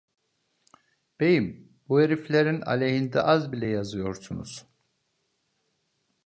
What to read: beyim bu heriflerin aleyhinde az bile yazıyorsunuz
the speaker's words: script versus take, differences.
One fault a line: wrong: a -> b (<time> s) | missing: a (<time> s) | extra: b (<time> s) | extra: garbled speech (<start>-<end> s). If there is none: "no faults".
no faults